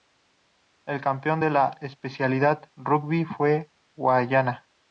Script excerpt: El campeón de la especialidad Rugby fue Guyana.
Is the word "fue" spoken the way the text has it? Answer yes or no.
yes